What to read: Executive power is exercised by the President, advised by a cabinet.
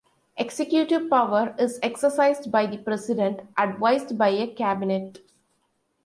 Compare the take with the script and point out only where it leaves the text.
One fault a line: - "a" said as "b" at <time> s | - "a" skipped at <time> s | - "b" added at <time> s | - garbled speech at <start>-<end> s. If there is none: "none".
none